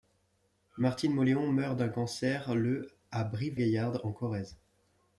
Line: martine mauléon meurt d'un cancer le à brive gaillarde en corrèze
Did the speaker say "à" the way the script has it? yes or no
yes